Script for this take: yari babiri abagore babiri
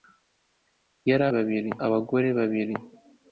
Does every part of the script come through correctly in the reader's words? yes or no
yes